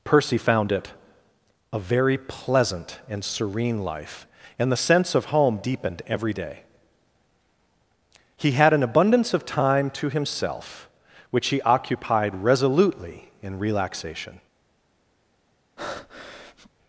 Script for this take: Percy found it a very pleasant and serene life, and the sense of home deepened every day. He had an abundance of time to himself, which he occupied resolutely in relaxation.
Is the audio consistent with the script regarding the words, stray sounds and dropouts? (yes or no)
no